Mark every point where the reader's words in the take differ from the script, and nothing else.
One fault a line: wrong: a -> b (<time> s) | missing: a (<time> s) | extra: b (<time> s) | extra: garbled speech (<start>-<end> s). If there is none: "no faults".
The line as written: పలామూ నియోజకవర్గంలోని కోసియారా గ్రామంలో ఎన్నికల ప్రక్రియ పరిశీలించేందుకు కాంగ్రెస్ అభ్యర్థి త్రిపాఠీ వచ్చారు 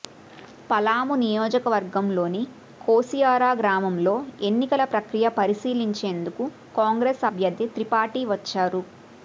no faults